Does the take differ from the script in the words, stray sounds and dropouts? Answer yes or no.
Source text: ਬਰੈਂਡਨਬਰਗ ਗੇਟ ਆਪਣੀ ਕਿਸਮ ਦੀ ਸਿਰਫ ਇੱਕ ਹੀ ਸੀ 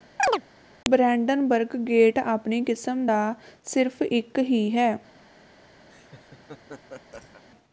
yes